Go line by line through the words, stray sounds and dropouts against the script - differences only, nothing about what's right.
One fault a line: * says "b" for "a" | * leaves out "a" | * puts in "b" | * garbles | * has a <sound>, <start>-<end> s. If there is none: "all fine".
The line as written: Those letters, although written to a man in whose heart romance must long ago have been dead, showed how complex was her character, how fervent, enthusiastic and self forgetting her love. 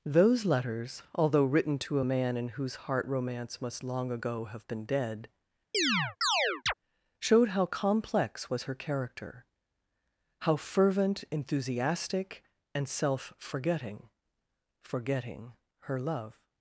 * has a chirp, 5.7-6.7 s
* puts in "forgetting"